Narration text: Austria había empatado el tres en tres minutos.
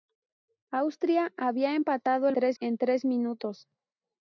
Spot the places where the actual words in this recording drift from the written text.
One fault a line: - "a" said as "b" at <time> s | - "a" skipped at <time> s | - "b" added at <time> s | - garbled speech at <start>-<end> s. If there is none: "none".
none